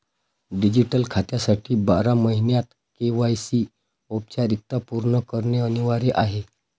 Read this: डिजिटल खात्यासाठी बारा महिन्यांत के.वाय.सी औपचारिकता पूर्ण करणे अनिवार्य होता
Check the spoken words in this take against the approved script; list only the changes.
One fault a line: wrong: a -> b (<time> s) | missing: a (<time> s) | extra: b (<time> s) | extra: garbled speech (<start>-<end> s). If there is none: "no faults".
wrong: होता -> आहे (6.2 s)